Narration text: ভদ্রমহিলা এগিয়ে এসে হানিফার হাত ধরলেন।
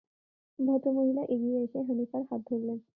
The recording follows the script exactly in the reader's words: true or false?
true